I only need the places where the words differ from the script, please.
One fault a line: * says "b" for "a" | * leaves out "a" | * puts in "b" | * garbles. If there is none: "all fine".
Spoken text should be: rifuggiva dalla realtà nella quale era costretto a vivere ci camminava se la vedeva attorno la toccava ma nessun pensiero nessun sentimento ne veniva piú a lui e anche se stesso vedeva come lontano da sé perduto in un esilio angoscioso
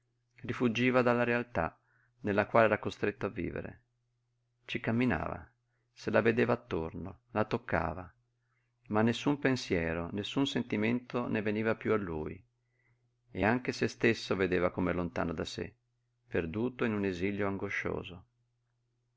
all fine